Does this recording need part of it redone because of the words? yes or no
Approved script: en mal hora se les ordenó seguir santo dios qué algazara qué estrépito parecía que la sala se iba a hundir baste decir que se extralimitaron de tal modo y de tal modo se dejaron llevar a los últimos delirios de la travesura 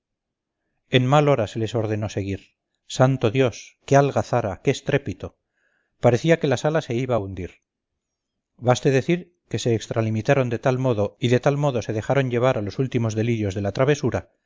no